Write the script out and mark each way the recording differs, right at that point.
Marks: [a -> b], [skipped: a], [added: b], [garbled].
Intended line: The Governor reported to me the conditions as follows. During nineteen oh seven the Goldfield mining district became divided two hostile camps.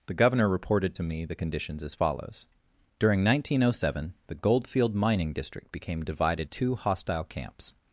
The Governor reported to me the conditions as follows. During nineteen oh seven the Goldfield mining district became divided two hostile camps.